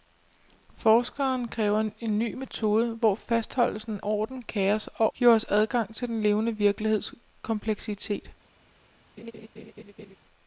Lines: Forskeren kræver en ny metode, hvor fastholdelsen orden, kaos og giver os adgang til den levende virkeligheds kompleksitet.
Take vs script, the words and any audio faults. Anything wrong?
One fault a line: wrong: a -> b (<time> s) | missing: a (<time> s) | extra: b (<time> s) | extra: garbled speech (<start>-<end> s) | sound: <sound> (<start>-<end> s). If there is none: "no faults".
sound: laugh (9.2-10.2 s)